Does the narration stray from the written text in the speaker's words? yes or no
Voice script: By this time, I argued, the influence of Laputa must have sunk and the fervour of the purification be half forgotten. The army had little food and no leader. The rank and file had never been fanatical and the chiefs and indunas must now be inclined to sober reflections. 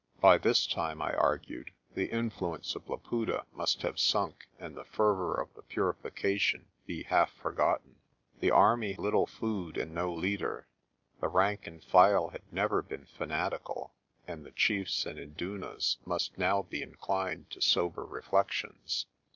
yes